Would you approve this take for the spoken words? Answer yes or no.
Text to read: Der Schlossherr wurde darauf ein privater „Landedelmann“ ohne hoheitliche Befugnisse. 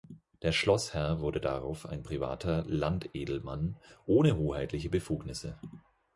yes